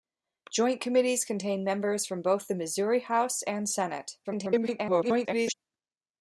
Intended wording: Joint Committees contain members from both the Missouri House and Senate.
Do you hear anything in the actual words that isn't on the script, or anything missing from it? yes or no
yes